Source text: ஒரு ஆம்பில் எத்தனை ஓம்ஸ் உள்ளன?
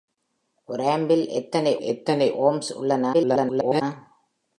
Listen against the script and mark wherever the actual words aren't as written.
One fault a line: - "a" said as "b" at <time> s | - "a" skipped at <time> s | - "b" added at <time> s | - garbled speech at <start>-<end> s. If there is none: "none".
- "எத்தனை" added at 1.8 s
- garbled speech at 3.1-3.8 s